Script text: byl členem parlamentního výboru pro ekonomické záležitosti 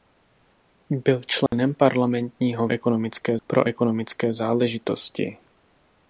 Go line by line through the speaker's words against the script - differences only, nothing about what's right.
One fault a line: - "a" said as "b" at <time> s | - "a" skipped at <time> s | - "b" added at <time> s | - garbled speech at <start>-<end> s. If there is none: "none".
- "výboru" said as "ekonomické" at 2.7 s